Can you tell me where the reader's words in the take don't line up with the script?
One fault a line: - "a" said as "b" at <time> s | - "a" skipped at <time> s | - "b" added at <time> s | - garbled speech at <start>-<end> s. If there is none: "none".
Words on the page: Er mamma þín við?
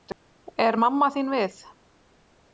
none